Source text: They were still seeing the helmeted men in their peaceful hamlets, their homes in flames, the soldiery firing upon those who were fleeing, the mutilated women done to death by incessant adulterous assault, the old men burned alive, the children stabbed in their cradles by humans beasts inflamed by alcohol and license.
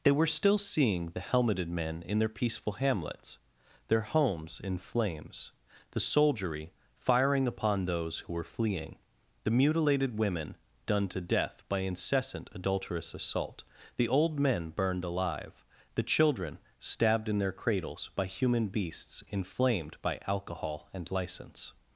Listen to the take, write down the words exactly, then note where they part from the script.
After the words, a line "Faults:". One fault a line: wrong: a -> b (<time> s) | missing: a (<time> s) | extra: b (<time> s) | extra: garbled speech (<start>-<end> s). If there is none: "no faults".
They were still seeing the helmeted men in their peaceful hamlets, their homes in flames, the soldiery firing upon those who were fleeing, the mutilated women done to death by incessant adulterous assault, the old men burned alive, the children stabbed in their cradles by human beasts inflamed by alcohol and license.
Faults:
wrong: humans -> human (18.2 s)